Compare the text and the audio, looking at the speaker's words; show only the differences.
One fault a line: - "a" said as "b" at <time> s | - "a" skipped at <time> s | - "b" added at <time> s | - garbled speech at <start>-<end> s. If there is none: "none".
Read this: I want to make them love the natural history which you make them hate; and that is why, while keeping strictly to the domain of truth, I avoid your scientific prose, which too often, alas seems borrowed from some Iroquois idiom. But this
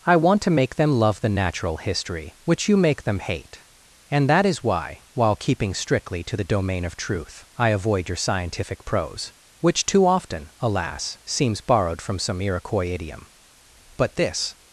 none